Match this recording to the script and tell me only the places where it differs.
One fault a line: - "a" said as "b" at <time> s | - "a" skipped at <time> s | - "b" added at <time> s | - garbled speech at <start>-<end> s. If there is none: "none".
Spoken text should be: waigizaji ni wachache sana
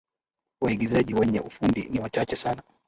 - "wenye ufundi" added at 1.1 s